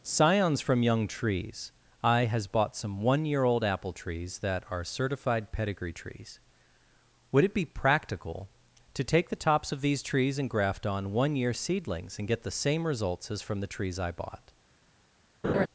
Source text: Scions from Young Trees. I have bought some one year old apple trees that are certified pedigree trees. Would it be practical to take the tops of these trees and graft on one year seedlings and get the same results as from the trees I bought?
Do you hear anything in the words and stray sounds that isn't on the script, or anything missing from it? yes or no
yes